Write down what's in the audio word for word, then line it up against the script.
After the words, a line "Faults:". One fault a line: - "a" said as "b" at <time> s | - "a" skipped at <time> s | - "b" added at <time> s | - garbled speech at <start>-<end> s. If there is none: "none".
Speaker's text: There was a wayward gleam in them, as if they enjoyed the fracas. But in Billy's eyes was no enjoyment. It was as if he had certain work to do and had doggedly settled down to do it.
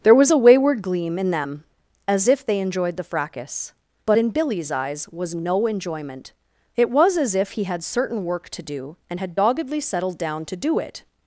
There was a wayward gleam in them, as if they enjoyed the fracas. But in Billy's eyes was no enjoyment. It was as if he had certain work to do and had doggedly settled down to do it.
Faults:
none